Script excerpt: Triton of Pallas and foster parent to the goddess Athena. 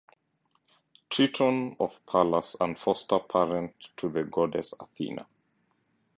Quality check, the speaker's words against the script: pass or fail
pass